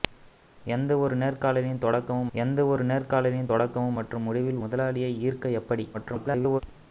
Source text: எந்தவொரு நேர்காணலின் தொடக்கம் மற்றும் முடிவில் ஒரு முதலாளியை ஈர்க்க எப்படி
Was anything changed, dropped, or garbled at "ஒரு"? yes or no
yes